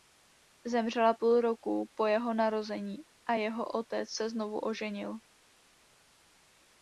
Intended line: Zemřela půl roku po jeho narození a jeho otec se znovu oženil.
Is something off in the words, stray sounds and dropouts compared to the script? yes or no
no